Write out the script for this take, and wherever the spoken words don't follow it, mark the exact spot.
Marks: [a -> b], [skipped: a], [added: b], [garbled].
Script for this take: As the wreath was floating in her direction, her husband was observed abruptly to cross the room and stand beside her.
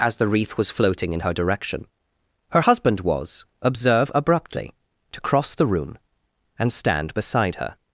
As the wreath was floating in her direction, her husband was [observed -> observe] abruptly to cross the room and stand beside her.